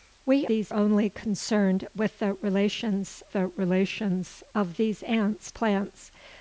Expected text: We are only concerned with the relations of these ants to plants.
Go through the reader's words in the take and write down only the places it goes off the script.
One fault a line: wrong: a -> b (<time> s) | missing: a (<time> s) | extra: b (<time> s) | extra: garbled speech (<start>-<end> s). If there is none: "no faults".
wrong: are -> these (0.5 s)
extra: the relations (3.3 s)
missing: to (5.5 s)